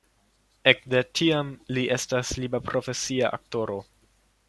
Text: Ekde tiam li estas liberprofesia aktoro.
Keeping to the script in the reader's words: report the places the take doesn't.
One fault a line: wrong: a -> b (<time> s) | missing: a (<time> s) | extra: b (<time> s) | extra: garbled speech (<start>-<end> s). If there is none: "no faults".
no faults